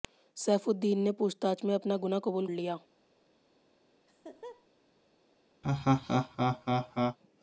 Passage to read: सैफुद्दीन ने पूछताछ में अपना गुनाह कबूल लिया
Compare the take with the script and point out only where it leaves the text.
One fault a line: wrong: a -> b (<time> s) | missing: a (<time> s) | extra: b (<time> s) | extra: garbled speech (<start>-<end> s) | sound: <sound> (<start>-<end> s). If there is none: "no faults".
sound: laugh (4.1-4.7 s)
sound: laugh (5.6-7.2 s)